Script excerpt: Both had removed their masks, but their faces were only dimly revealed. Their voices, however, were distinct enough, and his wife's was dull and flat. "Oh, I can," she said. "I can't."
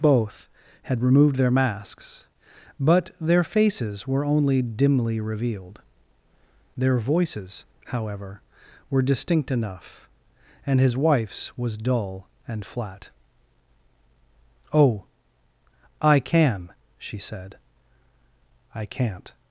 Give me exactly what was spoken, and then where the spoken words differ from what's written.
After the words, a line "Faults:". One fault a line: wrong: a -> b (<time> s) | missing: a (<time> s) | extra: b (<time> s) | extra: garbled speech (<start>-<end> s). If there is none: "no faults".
Both had removed their masks, but their faces were only dimly revealed. Their voices, however, were distinct enough, and his wife's was dull and flat. "Oh, I can," she said. "I can't."
Faults:
no faults